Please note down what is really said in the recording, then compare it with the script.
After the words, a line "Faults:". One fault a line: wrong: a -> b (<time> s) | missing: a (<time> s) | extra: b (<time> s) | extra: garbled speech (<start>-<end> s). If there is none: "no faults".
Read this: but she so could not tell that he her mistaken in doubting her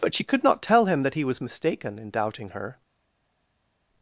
but she could not tell him that he was mistaken in doubting her
Faults:
missing: so (0.2 s)
extra: him (0.8 s)
wrong: her -> was (1.2 s)